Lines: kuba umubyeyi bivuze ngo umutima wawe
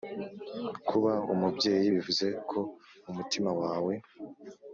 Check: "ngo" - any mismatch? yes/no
yes